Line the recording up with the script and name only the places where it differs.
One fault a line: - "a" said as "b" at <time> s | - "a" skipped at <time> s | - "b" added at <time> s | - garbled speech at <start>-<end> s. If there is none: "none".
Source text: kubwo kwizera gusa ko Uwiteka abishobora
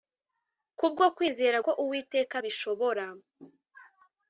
- "gusa" skipped at 1.6 s